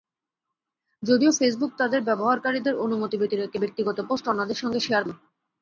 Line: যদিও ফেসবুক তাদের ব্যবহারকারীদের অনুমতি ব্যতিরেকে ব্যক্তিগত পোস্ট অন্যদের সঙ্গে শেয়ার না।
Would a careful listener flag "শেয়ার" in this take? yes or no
no